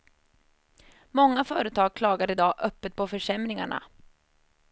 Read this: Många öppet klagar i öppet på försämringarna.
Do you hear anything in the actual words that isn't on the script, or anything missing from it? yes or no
yes